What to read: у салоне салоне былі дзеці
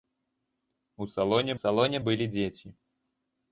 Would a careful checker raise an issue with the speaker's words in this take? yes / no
no